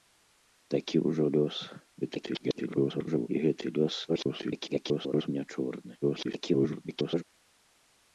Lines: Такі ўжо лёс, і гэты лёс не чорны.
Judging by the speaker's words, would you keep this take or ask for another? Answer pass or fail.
fail